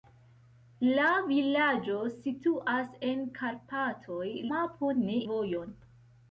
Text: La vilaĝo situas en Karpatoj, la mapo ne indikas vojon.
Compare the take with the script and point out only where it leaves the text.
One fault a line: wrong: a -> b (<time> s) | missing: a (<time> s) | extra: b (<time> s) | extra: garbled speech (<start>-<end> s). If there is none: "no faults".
missing: la (4.2 s)
missing: indikas (5.2 s)